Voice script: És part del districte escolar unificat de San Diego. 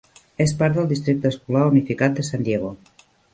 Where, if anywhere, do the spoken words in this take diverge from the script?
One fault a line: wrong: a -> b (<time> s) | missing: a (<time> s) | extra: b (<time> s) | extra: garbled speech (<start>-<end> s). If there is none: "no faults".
no faults